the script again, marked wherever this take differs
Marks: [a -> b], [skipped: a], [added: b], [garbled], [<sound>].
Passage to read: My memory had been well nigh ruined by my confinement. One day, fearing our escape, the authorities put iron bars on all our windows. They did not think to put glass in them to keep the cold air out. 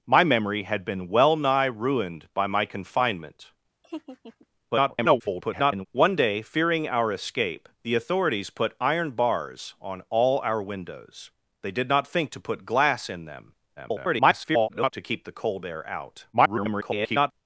My memory had been well nigh ruined by my confinement. [laugh] [garbled] One day, fearing our escape, the authorities put iron bars on all our windows. They did not think to put glass in them [garbled] to keep the cold air out. [garbled]